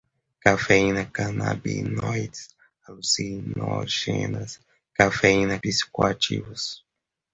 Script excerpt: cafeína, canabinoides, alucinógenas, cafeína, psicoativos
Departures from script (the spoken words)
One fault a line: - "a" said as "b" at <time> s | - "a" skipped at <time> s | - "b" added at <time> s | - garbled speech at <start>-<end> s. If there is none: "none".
none